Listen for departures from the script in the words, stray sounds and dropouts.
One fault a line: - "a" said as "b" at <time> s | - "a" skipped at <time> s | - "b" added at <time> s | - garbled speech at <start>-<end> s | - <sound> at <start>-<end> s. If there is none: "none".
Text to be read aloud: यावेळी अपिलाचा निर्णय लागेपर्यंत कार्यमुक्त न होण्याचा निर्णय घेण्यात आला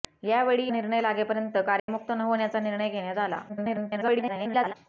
- "अपिलाचा" skipped at 0.7 s
- dropout at 1.8-1.9 s
- garbled speech at 3.5-4.7 s